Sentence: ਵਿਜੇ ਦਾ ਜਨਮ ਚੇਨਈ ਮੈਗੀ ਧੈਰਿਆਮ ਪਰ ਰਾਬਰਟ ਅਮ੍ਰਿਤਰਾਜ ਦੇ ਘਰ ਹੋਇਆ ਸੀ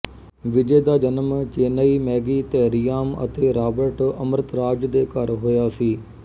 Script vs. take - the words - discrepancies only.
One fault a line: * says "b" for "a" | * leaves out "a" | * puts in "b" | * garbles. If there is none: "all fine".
* says "ਅਤੇ" for "ਪਰ"